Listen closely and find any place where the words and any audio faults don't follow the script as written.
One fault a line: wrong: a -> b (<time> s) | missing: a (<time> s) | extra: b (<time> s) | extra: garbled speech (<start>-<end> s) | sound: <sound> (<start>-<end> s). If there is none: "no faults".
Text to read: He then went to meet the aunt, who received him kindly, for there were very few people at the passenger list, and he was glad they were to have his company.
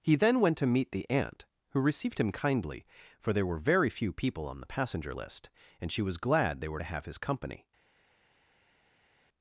wrong: at -> on (4.5 s)
wrong: he -> she (5.9 s)